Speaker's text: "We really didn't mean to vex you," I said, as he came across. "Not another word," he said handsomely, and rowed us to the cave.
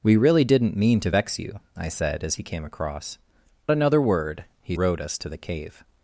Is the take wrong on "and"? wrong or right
wrong